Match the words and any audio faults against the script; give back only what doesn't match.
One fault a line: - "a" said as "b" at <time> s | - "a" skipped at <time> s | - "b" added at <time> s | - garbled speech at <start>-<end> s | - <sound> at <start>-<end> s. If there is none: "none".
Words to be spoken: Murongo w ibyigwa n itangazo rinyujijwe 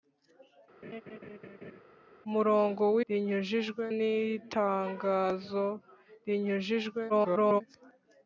- laugh at 0.8-1.8 s
- "ibyigwa" said as "rinyujijwe" at 3.1 s
- garbled speech at 7.1-7.6 s